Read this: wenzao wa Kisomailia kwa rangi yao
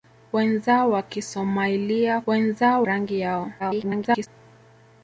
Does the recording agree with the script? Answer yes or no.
no